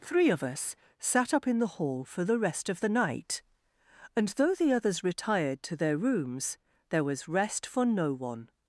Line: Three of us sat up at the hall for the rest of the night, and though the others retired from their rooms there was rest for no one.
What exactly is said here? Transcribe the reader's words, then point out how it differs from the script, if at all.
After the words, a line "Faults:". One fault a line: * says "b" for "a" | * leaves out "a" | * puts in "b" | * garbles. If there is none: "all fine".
Three of us sat up in the hall for the rest of the night, and though the others retired to their rooms there was rest for no one.
Faults:
* says "in" for "at"
* says "to" for "from"